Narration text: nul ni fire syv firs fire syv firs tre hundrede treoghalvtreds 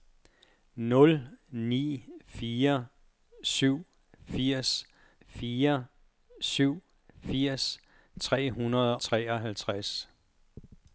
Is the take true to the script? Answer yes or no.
yes